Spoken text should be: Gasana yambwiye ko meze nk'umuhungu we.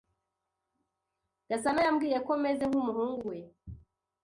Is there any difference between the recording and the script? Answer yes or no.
no